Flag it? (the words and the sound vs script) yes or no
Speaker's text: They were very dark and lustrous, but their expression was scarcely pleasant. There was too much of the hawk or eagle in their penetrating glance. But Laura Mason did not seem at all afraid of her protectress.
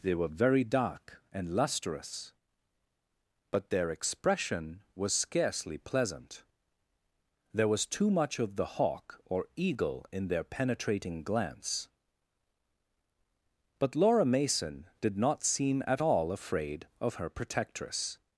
no